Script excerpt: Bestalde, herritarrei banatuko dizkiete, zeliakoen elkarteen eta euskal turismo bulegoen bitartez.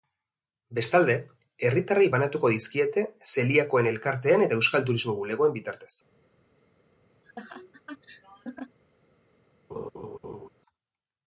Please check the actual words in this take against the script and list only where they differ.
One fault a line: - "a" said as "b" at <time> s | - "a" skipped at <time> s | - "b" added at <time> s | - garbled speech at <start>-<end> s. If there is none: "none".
none